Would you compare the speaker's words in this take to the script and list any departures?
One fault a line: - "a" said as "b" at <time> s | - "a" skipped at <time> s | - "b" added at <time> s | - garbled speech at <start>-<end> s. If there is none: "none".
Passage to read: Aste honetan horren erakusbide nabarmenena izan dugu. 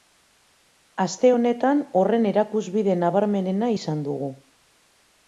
none